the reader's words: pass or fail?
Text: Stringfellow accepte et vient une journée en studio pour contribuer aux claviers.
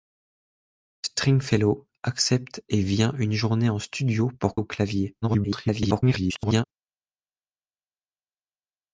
fail